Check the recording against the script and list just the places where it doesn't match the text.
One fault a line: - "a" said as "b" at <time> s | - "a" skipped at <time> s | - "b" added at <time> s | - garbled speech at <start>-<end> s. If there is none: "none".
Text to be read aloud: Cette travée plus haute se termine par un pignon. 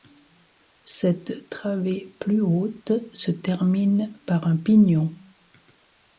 none